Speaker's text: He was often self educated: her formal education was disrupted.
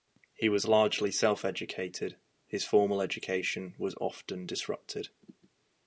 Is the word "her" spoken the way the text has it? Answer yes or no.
no